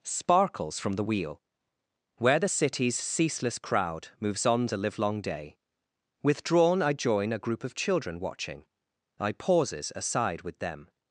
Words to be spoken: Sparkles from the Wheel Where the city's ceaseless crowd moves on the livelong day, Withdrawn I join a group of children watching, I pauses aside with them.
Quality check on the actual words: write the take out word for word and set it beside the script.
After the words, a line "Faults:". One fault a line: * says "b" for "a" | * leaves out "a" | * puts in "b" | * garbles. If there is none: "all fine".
Sparkles from the Wheel Where the city's ceaseless crowd moves on the livelong day, Withdrawn I join a group of children watching, I pauses aside with them.
Faults:
all fine